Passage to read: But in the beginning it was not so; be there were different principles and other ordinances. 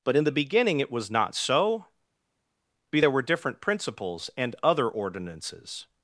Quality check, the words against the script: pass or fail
pass